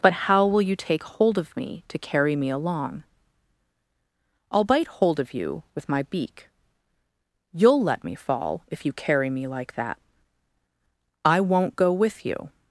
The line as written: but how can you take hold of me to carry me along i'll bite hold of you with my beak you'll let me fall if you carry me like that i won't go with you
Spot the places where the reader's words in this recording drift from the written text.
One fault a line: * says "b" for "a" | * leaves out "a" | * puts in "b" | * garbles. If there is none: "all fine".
* says "will" for "can"